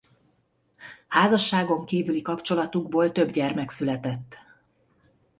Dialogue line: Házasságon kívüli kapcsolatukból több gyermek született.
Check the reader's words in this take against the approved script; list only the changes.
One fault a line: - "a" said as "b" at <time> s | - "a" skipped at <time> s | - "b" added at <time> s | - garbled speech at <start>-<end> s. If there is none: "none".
none